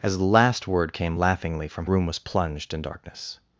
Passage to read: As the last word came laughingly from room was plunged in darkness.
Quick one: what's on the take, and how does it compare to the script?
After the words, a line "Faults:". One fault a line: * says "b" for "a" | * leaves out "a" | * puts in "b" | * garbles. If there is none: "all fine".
As the last word came laughingly from room was plunged in darkness.
Faults:
all fine